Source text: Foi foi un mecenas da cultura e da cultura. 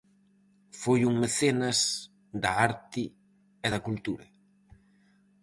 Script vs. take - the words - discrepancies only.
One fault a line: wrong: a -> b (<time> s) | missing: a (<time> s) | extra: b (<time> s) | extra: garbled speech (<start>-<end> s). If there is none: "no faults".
missing: foi (1.0 s)
wrong: cultura -> arte (2.7 s)